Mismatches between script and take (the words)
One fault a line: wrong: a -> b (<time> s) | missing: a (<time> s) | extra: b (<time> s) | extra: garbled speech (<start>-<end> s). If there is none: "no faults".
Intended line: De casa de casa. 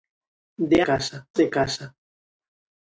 no faults